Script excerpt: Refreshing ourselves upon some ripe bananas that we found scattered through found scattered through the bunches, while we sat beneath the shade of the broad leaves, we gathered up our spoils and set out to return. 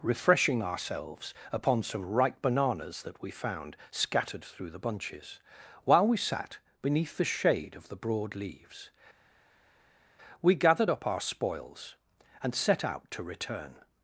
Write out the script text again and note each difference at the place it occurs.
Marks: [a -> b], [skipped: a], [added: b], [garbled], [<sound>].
Refreshing ourselves upon some ripe bananas that we found scattered through [skipped: found scattered through] the bunches, while we sat beneath the shade of the broad leaves, we gathered up our spoils and set out to return.